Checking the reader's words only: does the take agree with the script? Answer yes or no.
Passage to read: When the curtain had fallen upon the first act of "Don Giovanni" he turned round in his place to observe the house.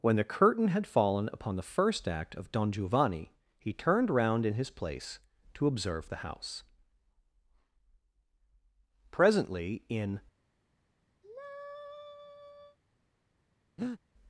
no